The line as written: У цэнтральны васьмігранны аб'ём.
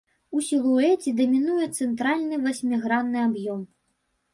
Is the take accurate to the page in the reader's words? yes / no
no